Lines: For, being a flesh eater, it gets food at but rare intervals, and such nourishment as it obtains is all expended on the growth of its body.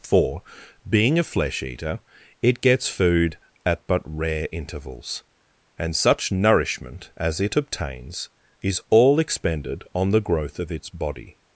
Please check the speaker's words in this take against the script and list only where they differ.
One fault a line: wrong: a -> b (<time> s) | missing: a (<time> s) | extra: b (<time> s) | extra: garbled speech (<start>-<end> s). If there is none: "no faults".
no faults